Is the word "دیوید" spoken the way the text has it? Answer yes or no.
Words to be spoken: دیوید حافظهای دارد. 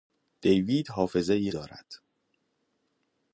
yes